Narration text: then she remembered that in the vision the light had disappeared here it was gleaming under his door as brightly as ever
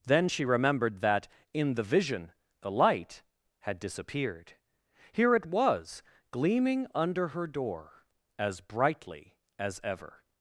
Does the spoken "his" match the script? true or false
false